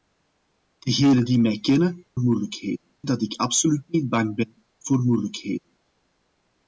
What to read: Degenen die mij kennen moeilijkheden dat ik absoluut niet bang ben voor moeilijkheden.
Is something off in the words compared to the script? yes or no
no